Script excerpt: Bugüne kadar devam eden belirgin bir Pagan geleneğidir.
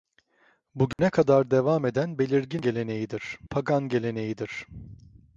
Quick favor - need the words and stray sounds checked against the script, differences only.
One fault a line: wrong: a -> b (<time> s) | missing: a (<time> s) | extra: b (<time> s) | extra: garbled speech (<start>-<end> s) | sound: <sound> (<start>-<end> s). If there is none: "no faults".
sound: dropout (0.9-1.0 s)
wrong: bir -> geleneğidir (2.6 s)